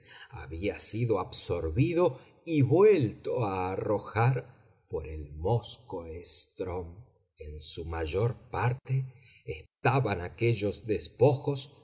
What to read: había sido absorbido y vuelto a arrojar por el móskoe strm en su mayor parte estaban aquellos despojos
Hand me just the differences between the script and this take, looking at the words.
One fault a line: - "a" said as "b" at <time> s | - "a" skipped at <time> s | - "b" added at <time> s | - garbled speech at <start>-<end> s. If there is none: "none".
none